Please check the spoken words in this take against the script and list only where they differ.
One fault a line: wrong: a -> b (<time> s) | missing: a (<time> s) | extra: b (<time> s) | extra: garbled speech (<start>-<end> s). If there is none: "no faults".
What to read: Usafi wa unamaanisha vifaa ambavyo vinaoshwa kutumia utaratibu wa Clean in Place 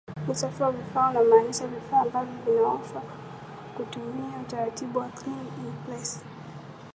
extra: vifaa (0.7 s)